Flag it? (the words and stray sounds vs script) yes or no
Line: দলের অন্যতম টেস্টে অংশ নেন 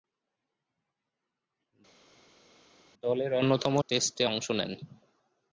no